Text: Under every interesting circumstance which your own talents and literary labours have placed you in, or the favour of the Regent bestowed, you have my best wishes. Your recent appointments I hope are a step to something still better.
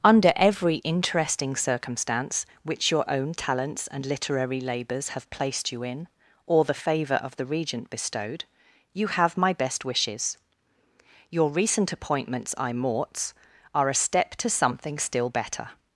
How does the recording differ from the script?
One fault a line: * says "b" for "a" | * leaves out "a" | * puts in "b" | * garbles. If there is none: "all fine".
* says "morts" for "hope"